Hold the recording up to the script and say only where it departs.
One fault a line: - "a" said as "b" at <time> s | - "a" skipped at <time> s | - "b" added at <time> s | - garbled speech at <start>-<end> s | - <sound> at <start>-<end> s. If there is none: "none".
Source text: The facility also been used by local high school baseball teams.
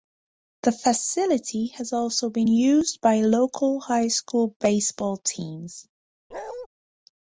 - "has" added at 1.8 s
- bark at 6.3-6.7 s